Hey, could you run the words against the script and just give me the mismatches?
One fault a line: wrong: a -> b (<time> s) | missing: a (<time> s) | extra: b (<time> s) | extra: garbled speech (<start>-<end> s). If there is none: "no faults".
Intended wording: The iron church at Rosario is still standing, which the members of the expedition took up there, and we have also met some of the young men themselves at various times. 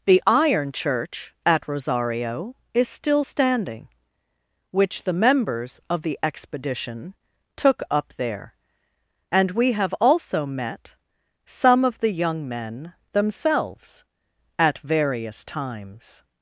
no faults